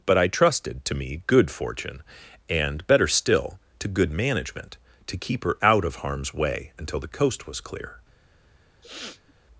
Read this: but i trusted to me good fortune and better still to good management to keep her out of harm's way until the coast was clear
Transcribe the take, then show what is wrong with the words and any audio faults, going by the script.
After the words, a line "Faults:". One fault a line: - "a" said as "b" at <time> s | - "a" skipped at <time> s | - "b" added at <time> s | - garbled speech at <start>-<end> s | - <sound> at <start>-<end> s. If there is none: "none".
but i trusted to me good fortune and better still to good management to keep her out of harm's way until the coast was clear
Faults:
- sniff at 8.8-9.3 s